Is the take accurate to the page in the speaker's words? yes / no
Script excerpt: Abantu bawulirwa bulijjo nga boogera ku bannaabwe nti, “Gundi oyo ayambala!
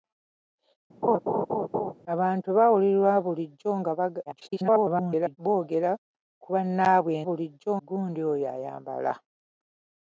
no